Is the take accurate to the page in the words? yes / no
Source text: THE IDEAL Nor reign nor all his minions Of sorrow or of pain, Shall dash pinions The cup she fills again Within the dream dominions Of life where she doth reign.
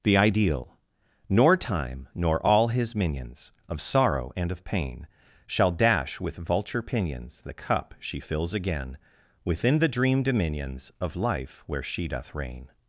no